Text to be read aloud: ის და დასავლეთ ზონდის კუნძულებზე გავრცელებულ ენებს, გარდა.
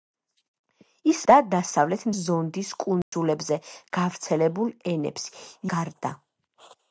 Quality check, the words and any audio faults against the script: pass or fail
fail